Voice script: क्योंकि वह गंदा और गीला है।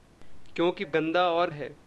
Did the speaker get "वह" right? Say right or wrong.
wrong